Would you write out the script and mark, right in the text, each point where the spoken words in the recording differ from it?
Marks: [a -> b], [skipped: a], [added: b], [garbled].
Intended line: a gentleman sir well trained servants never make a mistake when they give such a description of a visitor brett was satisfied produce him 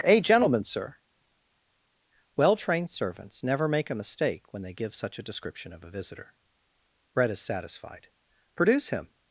a gentleman sir well trained servants never make a mistake when they give such a description of a visitor brett [was -> is] satisfied produce him